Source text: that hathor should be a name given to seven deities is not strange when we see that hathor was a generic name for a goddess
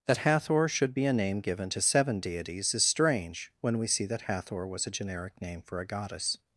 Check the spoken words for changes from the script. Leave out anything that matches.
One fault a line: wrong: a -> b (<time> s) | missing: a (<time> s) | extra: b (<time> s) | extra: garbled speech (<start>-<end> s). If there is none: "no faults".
missing: not (2.8 s)